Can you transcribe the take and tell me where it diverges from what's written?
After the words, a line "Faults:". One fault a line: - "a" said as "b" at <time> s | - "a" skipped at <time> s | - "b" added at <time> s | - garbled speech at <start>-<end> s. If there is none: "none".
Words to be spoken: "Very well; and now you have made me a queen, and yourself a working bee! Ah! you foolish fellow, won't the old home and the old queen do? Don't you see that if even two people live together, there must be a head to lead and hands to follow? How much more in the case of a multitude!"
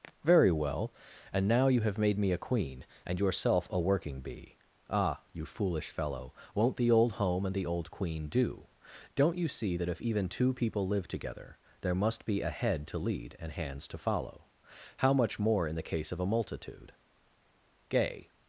"Very well; and now you have made me a queen, and yourself a working bee! Ah! you foolish fellow, won't the old home and the old queen do? Don't you see that if even two people live together, there must be a head to lead and hands to follow? How much more in the case of a multitude!" Gay
Faults:
- "Gay" added at 17.9 s